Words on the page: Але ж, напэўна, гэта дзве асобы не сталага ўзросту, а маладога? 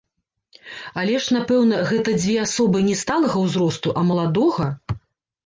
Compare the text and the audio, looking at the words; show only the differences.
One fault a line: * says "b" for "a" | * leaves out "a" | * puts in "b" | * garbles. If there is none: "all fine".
all fine